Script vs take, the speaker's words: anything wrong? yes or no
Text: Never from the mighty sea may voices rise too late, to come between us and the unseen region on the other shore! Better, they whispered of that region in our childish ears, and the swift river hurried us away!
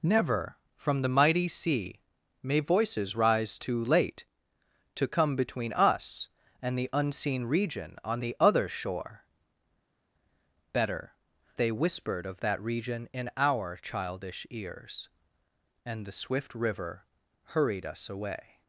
no